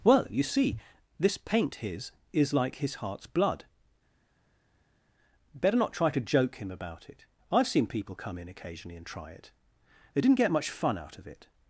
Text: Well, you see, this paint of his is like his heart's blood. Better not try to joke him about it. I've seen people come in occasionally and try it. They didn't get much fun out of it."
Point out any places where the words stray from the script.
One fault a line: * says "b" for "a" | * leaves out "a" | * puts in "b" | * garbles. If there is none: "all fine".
* leaves out "of"